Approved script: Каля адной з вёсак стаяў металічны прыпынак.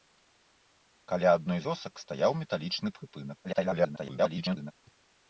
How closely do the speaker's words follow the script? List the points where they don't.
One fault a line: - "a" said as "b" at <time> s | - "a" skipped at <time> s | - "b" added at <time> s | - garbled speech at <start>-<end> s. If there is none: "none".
- "з" skipped at 1.6 s
- garbled speech at 3.4-4.7 s